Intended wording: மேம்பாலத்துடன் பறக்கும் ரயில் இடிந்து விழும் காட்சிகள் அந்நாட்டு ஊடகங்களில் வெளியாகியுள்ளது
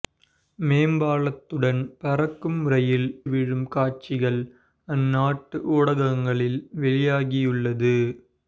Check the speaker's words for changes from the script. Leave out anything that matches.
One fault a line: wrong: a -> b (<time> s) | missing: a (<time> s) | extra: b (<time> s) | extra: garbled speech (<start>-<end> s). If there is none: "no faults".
missing: இடிந்து (3.0 s)